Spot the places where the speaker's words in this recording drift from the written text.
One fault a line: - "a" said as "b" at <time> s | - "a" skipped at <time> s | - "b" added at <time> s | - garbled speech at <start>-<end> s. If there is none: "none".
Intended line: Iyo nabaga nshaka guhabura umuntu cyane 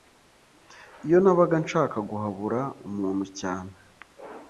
none